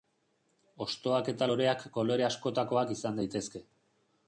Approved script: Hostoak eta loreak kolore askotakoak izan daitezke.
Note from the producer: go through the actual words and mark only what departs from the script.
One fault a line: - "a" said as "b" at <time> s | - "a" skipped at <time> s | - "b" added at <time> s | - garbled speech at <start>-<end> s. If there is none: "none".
none